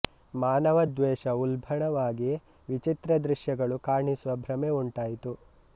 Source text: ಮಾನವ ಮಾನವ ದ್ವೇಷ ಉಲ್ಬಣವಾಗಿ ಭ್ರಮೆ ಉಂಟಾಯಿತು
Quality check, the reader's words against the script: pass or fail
fail